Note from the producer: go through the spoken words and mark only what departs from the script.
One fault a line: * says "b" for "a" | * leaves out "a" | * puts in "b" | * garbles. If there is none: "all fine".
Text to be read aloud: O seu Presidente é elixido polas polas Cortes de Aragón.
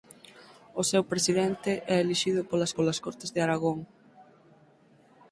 all fine